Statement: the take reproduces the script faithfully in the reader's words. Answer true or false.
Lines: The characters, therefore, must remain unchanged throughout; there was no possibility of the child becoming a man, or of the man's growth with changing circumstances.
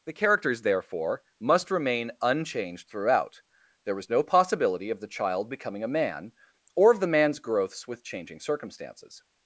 false